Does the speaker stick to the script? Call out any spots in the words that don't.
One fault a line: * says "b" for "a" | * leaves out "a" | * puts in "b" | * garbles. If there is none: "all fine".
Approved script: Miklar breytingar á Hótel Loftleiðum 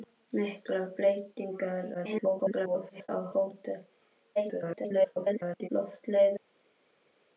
* garbles
* garbles